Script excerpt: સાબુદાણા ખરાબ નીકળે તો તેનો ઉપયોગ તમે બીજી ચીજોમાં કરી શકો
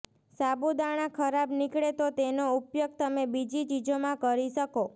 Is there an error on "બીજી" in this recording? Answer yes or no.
no